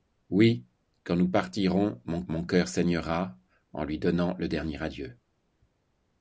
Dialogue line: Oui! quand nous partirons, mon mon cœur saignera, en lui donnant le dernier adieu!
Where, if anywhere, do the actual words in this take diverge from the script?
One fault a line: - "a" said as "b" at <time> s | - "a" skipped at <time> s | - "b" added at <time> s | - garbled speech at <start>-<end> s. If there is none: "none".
none